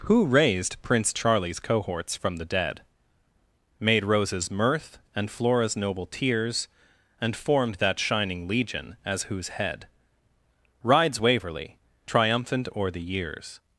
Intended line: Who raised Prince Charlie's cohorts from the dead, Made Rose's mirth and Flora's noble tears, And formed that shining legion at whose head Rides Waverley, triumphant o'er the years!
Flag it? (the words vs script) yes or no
yes